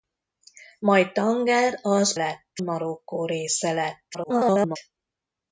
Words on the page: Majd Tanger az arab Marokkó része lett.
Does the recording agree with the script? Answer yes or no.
no